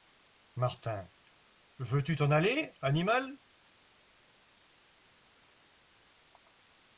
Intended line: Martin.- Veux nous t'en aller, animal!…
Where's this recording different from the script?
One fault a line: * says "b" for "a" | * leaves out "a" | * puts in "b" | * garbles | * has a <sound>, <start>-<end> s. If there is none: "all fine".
* says "tu" for "nous"